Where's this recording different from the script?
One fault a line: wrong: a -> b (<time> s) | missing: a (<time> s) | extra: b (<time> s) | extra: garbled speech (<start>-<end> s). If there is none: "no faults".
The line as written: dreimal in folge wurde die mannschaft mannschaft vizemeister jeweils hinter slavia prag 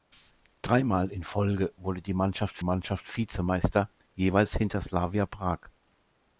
no faults